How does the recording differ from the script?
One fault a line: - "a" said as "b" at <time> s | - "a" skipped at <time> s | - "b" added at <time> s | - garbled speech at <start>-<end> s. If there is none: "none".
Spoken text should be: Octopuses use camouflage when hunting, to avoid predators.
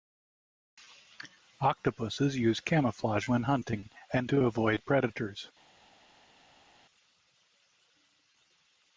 - "and" added at 4.1 s